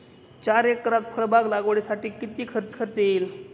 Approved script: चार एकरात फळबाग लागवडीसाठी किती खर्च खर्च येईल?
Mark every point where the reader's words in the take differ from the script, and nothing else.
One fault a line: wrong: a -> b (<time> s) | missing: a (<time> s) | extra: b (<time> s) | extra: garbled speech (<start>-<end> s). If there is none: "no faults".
no faults